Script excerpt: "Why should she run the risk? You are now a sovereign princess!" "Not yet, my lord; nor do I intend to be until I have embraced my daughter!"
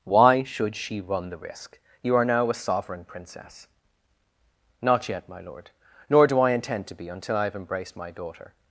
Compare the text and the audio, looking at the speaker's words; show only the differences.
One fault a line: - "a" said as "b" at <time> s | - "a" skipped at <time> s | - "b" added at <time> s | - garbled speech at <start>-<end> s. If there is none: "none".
none